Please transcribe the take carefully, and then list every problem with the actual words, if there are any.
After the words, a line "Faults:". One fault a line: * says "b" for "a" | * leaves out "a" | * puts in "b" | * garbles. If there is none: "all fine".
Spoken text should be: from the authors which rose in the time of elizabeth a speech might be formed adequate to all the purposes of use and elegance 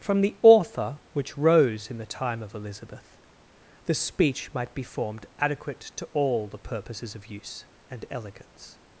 from the author which rose in the time of elizabeth the speech might be formed adequate to all the purposes of use and elegance
Faults:
* says "author" for "authors"
* says "the" for "a"